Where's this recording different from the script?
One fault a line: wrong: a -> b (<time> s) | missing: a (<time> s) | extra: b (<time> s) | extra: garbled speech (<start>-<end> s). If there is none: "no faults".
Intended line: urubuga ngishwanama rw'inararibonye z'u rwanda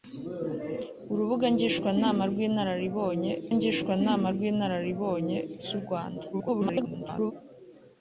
extra: ngishwanama rw'inararibonye (3.6 s)
extra: garbled speech (6.3-7.3 s)